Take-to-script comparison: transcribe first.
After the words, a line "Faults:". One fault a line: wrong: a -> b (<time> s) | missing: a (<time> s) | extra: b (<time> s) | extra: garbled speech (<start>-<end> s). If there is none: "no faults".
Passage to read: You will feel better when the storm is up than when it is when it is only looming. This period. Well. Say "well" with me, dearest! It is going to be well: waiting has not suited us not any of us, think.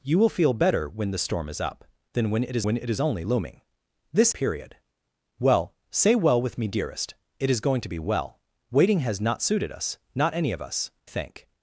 You will feel better when the storm is up than when it is when it is only looming. This period. Well. Say "well" with me, dearest! It is going to be well: waiting has not suited us not any of us, think.
Faults:
no faults